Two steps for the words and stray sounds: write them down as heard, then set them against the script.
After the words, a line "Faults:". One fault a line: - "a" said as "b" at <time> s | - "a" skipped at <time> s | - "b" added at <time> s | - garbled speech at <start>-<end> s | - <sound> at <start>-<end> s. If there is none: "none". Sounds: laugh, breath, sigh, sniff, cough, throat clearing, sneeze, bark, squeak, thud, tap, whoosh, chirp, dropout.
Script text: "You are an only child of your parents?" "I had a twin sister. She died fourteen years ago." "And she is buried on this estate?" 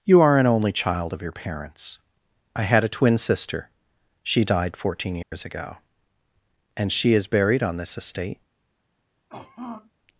"You are an only child of your parents?" "I had a twin sister. She died fourteen years ago." "And she is buried on this estate?"
Faults:
- dropout at 5.2-5.3 s
- throat clearing at 9.3-9.9 s